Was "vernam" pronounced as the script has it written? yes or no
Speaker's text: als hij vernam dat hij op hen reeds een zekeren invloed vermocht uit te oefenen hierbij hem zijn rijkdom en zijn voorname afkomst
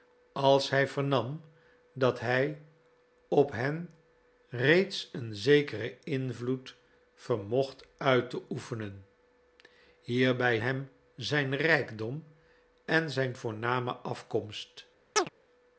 yes